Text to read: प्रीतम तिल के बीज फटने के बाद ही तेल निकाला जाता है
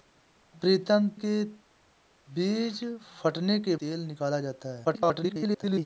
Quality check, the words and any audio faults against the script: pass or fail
fail